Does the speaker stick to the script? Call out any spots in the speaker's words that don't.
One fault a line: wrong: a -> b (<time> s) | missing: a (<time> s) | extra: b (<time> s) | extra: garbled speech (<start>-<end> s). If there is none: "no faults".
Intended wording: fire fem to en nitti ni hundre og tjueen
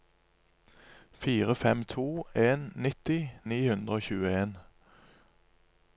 no faults